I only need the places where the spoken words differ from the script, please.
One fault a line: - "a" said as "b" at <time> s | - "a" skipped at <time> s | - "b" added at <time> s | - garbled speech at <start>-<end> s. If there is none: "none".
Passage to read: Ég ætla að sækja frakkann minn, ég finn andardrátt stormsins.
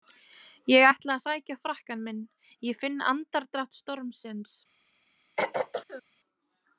none